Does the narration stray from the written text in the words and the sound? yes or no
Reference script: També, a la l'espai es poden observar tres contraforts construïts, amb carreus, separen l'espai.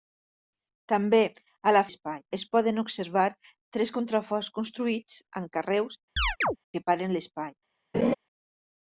yes